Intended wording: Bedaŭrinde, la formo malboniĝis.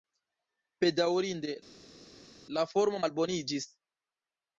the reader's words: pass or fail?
pass